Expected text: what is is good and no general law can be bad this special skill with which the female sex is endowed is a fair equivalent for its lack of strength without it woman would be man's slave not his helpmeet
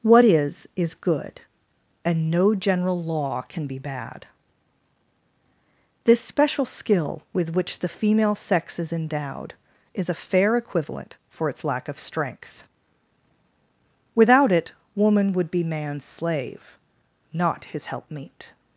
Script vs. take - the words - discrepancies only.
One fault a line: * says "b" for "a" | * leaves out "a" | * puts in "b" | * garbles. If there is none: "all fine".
all fine